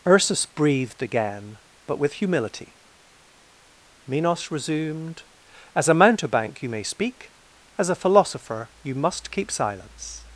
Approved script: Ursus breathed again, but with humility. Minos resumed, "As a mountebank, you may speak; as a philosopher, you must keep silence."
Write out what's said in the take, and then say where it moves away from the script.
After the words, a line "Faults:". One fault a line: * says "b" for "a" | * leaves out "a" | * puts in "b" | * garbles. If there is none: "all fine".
Ursus breathed again, but with humility. Minos resumed, "As a mountebank, you may speak; as a philosopher, you must keep silence."
Faults:
all fine